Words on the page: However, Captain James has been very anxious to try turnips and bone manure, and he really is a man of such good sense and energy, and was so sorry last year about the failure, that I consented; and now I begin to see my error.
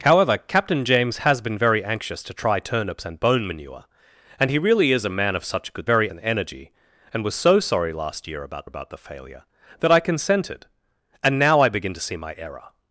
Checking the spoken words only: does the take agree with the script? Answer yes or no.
no